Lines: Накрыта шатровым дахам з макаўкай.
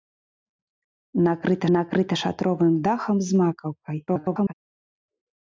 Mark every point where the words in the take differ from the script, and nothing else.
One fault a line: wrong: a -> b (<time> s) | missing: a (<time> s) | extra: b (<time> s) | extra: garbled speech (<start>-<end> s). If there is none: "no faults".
extra: накрыта (1.8 s)
extra: garbled speech (4.1-4.5 s)